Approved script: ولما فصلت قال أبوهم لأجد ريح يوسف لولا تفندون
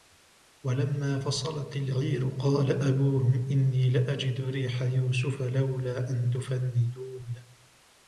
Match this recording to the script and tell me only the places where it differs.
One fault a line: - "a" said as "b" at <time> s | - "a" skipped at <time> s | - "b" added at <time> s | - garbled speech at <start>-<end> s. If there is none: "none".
- "العير" added at 1.8 s
- "إني" added at 3.3 s
- "أن" added at 6.1 s